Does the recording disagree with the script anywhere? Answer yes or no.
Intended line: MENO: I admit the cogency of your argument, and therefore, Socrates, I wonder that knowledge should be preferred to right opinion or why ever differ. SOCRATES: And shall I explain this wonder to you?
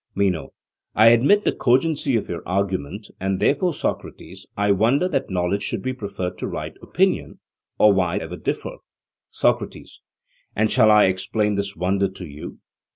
no